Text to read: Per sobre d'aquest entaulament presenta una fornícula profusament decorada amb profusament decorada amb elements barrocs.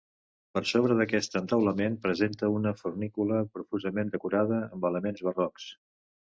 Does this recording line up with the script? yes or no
no